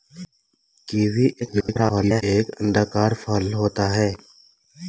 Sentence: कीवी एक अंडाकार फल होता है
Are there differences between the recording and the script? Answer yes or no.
yes